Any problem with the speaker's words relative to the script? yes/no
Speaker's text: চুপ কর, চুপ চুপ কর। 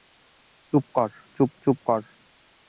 no